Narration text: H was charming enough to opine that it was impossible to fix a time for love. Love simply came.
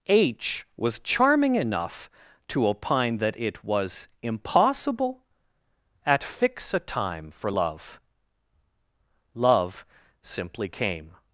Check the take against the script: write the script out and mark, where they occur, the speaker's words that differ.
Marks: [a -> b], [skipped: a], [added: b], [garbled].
H was charming enough to opine that it was impossible [to -> at] fix a time for love. Love simply came.